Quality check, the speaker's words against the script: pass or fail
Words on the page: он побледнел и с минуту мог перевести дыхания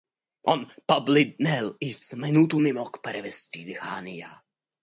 fail